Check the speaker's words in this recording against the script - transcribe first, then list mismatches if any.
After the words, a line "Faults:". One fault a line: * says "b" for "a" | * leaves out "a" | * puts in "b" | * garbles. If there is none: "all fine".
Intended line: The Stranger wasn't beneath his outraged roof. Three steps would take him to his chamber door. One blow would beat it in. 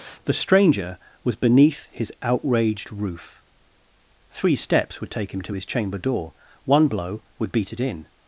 The Stranger was beneath his outraged roof. Three steps would take him to his chamber door. One blow would beat it in.
Faults:
* says "was" for "wasn't"